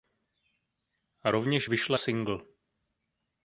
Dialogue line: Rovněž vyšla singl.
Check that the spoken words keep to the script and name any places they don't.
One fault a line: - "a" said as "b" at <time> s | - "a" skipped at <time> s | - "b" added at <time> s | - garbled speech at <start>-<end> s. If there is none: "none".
none